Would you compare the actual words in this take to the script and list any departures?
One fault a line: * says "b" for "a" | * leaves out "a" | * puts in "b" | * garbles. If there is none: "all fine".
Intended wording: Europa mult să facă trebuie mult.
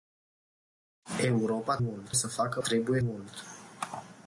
all fine